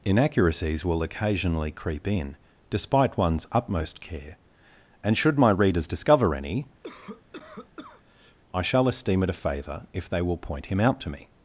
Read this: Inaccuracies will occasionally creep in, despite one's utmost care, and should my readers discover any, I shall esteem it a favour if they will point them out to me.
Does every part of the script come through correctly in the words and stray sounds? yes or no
no